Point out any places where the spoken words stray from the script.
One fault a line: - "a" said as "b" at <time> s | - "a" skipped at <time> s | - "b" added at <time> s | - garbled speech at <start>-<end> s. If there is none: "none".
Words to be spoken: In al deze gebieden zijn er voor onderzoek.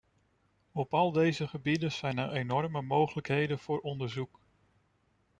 - "In" said as "Op" at 0.7 s
- "enorme mogelijkheden" added at 2.3 s